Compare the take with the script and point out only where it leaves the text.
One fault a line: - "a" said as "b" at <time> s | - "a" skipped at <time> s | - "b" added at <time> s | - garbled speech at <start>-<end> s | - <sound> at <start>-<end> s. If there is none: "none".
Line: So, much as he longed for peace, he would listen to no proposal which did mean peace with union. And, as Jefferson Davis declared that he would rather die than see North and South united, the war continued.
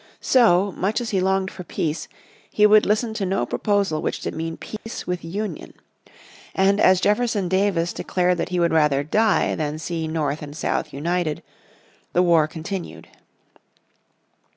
- dropout at 4.8-4.9 s